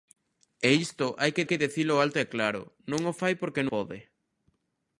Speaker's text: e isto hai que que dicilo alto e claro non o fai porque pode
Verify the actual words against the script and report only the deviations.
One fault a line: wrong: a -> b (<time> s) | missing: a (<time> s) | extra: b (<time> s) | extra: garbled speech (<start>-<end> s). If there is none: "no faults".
no faults